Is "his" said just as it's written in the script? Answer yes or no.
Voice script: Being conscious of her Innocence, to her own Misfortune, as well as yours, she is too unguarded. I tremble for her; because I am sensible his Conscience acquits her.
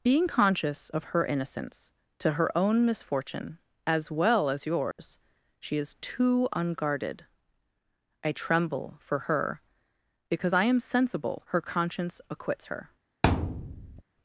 no